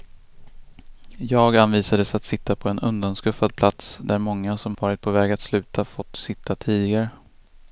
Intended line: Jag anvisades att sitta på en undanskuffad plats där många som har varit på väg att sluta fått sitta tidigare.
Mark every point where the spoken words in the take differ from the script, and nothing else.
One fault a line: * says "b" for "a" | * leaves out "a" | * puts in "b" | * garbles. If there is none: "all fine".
* leaves out "har"